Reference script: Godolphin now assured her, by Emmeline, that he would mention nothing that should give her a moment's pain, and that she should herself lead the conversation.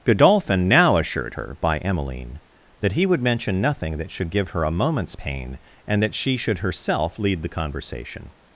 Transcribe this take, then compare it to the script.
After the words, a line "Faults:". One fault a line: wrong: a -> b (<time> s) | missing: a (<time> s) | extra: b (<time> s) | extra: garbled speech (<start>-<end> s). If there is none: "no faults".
Godolphin now assured her, by Emmeline, that he would mention nothing that should give her a moment's pain, and that she should herself lead the conversation.
Faults:
no faults